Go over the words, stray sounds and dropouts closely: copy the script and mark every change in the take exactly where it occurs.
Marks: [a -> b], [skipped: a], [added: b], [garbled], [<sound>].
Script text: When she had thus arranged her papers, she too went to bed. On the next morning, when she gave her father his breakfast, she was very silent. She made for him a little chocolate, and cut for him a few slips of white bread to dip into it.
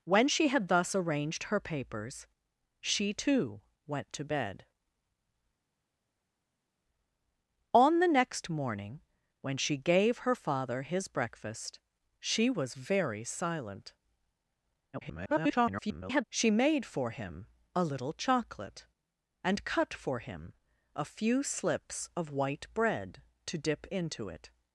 When she had thus arranged her papers, she too went to bed. On the next morning, when she gave her father his breakfast, she was very silent. [garbled] She made for him a little chocolate, and cut for him a few slips of white bread to dip into it.